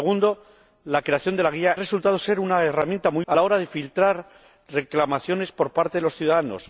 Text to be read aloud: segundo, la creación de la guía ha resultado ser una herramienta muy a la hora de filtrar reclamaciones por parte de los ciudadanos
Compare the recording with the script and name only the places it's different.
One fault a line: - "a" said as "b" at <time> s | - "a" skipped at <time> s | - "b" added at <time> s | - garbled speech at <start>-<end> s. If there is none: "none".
none